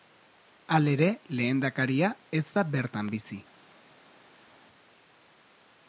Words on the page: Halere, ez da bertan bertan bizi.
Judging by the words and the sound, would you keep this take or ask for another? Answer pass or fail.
fail